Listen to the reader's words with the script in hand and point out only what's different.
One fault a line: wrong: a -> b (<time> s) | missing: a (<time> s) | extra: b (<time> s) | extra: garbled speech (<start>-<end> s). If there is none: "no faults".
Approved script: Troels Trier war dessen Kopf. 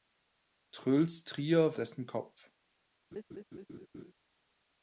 missing: war (1.8 s)